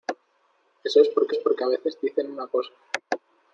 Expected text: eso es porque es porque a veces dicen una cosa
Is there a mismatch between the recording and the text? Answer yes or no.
no